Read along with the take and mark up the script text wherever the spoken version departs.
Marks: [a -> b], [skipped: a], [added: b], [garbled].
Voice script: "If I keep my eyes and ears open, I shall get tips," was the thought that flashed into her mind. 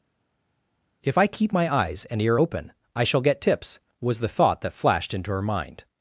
"If I keep my eyes and [ears -> ear] open, I shall get tips," was the thought that flashed into her mind.